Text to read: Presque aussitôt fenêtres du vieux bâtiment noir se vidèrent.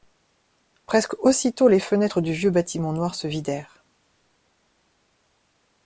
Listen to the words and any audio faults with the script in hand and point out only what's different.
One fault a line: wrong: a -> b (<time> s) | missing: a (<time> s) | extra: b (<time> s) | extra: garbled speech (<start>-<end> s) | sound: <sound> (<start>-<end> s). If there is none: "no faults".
extra: les (1.7 s)